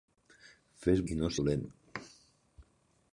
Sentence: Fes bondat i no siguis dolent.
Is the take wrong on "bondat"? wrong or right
wrong